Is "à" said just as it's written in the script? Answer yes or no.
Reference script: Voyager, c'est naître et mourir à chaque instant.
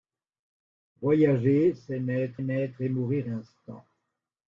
no